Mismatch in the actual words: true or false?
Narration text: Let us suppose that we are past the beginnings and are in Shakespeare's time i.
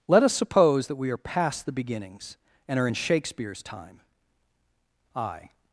false